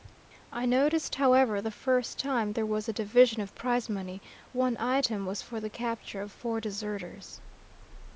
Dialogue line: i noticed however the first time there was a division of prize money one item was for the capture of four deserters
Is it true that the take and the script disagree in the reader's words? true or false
false